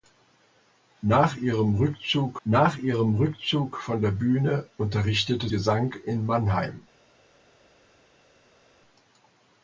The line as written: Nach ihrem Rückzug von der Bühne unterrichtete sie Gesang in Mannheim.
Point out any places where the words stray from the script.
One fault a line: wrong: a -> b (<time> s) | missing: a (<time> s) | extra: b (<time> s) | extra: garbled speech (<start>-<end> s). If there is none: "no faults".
extra: nach ihrem Rückzug (2.5 s)
missing: sie (5.5 s)